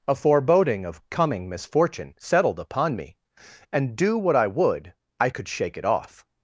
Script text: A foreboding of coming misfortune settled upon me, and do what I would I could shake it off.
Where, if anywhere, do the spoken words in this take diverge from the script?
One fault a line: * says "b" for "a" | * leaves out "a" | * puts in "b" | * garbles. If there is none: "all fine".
all fine